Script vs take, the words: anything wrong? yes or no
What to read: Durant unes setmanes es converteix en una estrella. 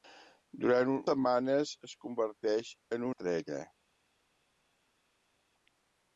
yes